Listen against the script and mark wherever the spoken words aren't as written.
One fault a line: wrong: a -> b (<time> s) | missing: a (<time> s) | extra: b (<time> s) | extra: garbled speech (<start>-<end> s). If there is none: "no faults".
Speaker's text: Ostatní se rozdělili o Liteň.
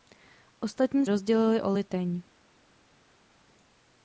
missing: se (1.1 s)